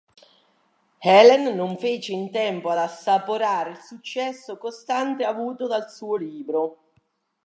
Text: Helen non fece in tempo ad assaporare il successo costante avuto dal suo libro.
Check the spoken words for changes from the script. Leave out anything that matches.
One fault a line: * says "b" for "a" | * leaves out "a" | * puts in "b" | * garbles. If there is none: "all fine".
all fine